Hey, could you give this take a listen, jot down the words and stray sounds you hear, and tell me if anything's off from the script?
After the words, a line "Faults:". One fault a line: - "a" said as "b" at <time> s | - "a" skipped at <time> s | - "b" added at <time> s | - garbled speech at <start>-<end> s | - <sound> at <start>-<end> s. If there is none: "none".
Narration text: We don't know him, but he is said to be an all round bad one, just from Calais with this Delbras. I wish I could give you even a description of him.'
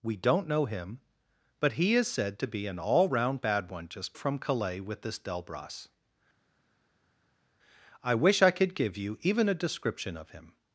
We don't know him, but he is said to be an all round bad one, just from Calais with this Delbras. I wish I could give you even a description of him.'
Faults:
none